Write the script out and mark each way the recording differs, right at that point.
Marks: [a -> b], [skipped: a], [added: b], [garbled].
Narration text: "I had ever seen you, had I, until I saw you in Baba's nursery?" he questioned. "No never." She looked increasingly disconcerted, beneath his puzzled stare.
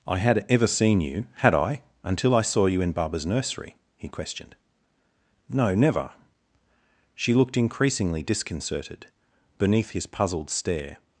"I had ever seen you, had I, until I saw you in Baba's nursery?" he questioned. "No never." She looked increasingly disconcerted, beneath his puzzled stare.